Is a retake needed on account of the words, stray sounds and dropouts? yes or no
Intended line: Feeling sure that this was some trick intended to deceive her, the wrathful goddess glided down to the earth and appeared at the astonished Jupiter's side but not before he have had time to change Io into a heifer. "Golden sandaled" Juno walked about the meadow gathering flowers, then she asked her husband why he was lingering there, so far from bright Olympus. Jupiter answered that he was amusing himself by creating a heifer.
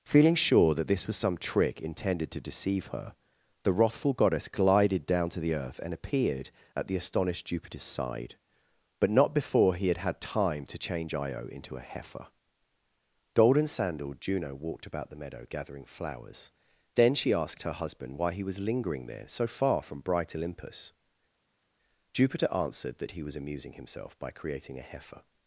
yes